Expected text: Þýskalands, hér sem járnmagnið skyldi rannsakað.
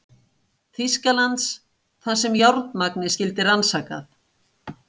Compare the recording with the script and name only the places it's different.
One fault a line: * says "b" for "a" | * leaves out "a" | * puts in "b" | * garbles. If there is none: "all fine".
* says "þar" for "hér"